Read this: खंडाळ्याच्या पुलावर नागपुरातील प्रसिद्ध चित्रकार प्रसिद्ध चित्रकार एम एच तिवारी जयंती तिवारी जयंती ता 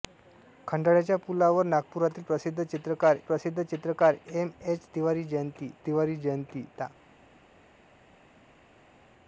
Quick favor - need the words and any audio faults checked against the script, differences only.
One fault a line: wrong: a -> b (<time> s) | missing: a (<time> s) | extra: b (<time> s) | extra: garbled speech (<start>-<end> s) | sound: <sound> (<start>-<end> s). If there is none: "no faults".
no faults